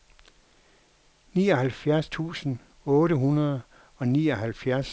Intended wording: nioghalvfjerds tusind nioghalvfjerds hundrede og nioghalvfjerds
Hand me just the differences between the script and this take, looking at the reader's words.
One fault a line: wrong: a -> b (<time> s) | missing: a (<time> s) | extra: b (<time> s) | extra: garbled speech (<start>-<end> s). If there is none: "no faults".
wrong: nioghalvfjerds -> otte (2.8 s)